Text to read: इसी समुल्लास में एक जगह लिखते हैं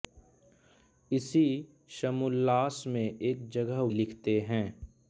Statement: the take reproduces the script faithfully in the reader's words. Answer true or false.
true